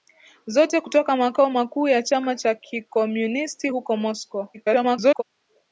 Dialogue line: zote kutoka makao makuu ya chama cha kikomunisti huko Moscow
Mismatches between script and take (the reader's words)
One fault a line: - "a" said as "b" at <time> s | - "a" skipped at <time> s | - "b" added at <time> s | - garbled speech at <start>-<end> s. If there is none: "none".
- garbled speech at 4.5-5.2 s